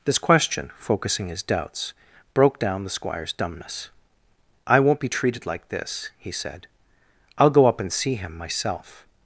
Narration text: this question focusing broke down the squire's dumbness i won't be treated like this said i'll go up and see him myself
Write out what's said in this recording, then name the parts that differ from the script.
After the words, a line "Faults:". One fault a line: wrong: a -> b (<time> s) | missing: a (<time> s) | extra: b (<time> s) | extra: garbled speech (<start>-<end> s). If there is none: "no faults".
this question focusing his doubts broke down the squire's dumbness i won't be treated like this he said i'll go up and see him myself
Faults:
extra: his doubts (1.3 s)
extra: he (6.2 s)